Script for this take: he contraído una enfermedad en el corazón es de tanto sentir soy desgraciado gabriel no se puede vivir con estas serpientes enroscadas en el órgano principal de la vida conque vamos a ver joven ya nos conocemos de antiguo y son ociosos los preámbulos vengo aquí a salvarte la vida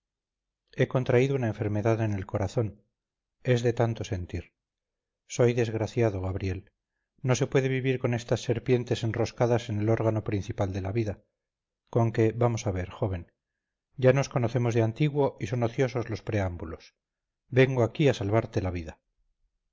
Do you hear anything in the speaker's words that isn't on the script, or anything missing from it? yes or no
no